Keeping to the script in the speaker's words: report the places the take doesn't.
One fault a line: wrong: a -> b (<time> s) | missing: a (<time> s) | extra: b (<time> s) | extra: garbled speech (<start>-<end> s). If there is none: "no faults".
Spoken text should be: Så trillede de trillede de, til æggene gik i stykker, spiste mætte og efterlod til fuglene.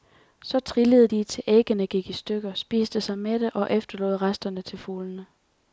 missing: trillede de (1.2 s)
extra: sig (3.0 s)
extra: resterne (4.2 s)